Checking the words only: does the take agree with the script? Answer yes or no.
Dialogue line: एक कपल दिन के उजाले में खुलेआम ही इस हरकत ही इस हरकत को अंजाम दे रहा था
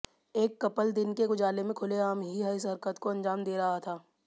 no